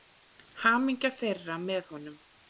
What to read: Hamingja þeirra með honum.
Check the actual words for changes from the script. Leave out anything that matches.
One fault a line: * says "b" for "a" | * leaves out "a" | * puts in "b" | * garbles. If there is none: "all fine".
all fine